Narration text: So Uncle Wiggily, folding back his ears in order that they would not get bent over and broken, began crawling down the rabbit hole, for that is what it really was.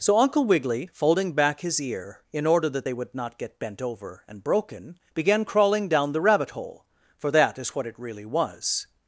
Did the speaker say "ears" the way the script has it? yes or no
no